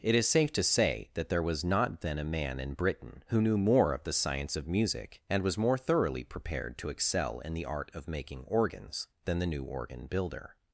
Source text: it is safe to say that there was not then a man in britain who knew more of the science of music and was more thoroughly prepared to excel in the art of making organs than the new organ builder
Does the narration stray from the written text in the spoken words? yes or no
no